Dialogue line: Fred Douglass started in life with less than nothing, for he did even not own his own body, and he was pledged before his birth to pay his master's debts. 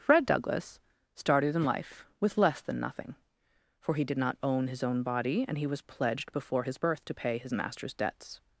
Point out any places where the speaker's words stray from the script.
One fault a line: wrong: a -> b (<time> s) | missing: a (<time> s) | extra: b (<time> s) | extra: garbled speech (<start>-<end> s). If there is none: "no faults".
missing: even (4.2 s)